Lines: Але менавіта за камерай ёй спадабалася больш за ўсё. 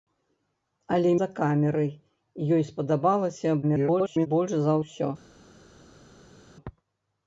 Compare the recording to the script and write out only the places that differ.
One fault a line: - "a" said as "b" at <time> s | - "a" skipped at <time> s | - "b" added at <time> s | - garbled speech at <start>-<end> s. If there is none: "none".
- "менавіта" skipped at 1.1 s
- garbled speech at 3.6-4.3 s